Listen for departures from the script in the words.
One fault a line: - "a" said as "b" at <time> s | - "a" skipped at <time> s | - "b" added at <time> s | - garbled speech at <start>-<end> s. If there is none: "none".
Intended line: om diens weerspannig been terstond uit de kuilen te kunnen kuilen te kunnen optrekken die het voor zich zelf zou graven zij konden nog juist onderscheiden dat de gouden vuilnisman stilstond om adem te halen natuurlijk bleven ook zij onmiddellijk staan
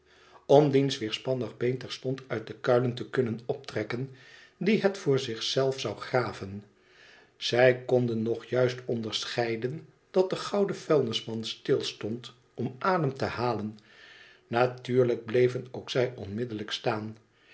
- "kuilen te kunnen" skipped at 3.4 s